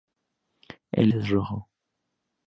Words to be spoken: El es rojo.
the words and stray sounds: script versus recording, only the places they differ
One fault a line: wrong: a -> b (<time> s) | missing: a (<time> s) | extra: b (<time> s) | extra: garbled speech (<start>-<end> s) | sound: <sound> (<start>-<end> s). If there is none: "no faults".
no faults